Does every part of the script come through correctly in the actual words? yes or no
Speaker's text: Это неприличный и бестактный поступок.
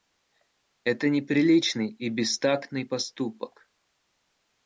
yes